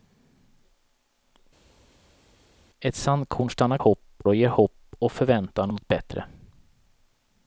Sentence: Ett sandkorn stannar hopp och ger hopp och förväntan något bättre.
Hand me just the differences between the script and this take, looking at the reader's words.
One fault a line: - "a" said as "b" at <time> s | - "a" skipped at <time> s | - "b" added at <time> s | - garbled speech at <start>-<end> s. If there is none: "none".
none